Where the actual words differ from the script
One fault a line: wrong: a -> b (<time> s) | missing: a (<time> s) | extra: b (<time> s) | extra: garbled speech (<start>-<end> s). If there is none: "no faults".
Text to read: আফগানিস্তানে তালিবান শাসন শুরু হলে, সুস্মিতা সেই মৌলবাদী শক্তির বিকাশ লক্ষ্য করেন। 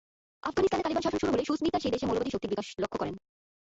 extra: দেশে (1.9 s)